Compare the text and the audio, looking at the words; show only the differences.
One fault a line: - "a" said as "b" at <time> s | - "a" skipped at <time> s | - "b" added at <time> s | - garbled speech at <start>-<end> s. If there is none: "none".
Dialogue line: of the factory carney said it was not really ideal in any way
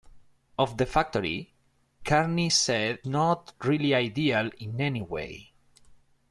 - "it was" skipped at 3.0 s